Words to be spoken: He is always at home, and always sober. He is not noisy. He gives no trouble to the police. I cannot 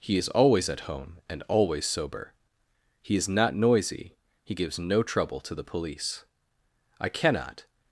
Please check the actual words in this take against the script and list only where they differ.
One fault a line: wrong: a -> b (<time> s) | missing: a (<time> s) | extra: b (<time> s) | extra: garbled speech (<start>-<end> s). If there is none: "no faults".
no faults